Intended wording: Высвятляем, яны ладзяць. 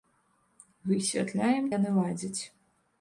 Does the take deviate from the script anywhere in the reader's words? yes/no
no